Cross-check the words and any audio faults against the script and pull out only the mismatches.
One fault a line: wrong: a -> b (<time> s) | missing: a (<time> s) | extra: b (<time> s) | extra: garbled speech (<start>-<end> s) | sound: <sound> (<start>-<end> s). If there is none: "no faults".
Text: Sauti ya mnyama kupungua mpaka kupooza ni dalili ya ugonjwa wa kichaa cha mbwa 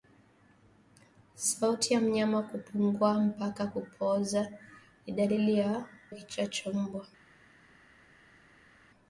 missing: ugonjwa (5.8 s)